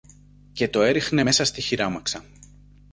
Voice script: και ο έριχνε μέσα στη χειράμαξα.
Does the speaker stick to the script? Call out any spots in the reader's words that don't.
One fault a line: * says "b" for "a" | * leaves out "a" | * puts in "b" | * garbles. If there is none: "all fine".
* says "το" for "ο"